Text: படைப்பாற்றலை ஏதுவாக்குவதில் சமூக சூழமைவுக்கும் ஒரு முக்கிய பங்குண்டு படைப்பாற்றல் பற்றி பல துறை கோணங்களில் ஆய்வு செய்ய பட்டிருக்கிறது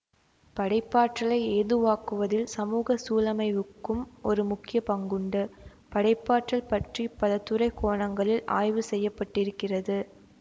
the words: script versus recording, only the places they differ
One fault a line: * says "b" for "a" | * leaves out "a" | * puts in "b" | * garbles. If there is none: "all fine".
all fine